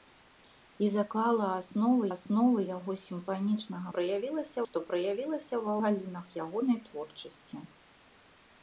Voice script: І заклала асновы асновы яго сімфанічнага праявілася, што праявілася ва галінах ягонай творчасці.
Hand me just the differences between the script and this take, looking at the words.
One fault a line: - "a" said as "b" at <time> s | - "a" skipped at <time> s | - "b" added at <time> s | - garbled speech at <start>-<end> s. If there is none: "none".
none